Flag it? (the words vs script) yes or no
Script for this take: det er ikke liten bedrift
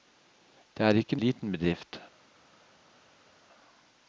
no